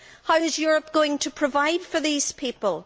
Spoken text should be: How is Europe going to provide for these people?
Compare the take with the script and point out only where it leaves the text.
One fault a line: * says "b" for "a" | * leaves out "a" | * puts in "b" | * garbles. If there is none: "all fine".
all fine